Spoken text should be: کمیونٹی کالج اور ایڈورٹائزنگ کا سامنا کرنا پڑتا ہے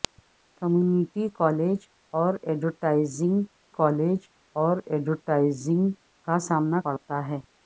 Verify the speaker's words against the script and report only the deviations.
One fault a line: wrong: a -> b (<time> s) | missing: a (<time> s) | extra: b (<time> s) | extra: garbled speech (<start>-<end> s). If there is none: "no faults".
extra: کالج اور ایڈورٹائزنگ (3.7 s)
missing: کرنا (6.8 s)